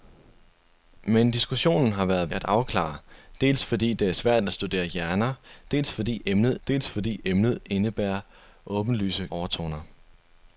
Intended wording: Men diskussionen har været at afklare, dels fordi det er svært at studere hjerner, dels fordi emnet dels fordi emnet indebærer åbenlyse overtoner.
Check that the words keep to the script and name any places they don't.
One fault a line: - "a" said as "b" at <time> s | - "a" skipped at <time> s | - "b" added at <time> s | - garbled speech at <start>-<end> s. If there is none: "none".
none